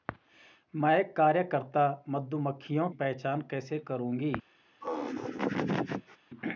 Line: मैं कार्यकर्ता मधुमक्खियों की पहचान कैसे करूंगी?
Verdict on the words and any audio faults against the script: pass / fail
fail